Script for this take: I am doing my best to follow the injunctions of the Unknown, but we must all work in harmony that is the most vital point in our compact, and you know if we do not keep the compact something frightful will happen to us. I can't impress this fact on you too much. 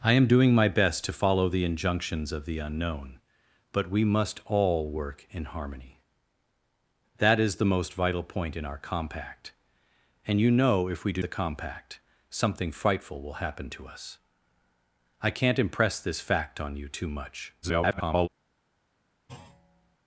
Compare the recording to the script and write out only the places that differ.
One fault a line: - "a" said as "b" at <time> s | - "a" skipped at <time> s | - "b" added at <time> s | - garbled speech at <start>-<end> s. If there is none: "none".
- "not keep" skipped at 11.2 s
- garbled speech at 17.6-18.3 s